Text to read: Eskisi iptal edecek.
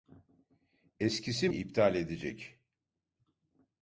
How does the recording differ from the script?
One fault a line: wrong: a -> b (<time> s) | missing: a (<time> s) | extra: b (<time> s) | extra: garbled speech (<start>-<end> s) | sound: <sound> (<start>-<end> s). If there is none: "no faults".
no faults